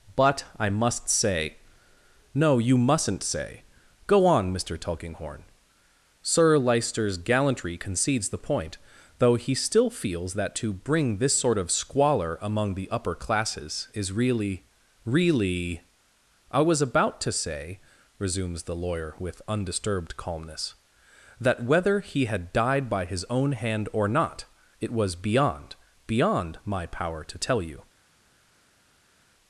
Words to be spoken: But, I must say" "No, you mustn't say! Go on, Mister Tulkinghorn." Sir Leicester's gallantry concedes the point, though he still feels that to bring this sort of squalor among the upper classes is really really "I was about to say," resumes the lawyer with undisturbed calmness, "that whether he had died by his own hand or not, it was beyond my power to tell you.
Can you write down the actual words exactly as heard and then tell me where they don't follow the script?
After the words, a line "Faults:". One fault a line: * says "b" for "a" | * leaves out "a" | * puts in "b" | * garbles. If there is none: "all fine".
But, I must say" "No, you mustn't say! Go on, Mister Tulkinghorn." Sir Leicester's gallantry concedes the point, though he still feels that to bring this sort of squalor among the upper classes is really really "I was about to say," resumes the lawyer with undisturbed calmness, "that whether he had died by his own hand or not, it was beyond beyond my power to tell you.
Faults:
* puts in "beyond"